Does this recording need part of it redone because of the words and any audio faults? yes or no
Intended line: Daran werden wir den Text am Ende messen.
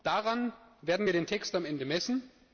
no